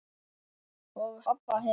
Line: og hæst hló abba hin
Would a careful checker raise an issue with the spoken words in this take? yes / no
yes